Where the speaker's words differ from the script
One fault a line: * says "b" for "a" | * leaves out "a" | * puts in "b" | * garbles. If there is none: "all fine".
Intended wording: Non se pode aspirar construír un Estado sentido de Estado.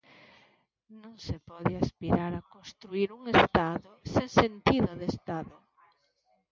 * puts in "a"
* puts in "sen"